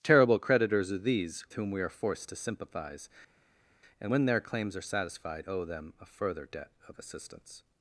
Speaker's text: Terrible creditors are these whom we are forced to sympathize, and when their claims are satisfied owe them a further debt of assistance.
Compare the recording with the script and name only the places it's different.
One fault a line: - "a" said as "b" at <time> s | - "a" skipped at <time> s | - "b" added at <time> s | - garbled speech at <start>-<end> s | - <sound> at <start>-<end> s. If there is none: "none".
none